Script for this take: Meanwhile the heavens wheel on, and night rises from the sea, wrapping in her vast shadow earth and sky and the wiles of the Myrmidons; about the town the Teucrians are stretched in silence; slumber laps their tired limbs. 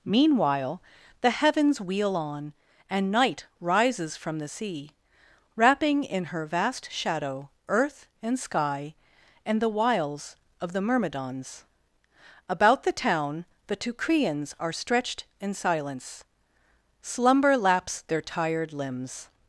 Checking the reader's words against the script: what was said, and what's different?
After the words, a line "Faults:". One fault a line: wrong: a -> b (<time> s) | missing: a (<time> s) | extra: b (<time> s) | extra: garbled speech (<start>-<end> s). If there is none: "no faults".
Meanwhile the heavens wheel on, and night rises from the sea, wrapping in her vast shadow earth and sky and the wiles of the Myrmidons; about the town the Teucrians are stretched in silence; slumber laps their tired limbs.
Faults:
no faults